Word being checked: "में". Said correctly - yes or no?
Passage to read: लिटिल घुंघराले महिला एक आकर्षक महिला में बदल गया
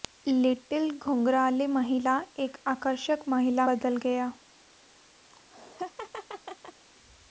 no